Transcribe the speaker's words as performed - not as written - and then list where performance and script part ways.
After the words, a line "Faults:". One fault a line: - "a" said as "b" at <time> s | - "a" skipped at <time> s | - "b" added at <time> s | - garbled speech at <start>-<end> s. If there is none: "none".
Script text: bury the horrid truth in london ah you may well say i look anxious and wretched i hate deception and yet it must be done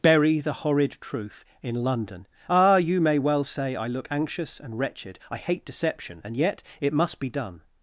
bury the horrid truth in london ah you may well say i look anxious and wretched i hate deception and yet it must be done
Faults:
none